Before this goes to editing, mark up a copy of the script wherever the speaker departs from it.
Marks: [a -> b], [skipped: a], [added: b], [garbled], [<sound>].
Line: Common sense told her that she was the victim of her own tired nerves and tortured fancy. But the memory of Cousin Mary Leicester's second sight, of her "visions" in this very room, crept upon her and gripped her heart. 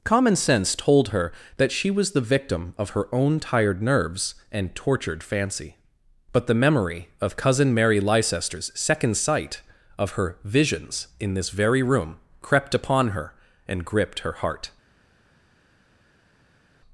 Common sense told her that she was the victim of her own tired nerves and tortured fancy. But the memory of Cousin Mary Leicester's second sight, of her "visions" in this very room, crept upon her and gripped her heart.